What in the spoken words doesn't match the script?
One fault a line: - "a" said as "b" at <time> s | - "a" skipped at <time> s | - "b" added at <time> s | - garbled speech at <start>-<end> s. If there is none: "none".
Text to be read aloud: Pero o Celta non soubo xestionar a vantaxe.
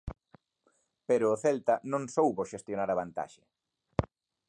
none